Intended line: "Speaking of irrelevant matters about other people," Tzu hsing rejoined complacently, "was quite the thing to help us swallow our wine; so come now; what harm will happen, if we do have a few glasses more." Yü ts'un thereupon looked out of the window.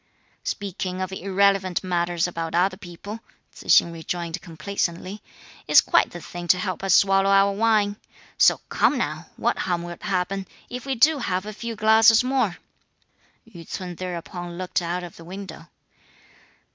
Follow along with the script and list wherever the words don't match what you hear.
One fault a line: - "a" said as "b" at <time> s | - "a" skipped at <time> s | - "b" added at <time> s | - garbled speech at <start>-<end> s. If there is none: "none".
- "was" said as "is" at 5.7 s